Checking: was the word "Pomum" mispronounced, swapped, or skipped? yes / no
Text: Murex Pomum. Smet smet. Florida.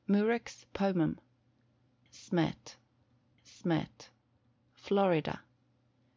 no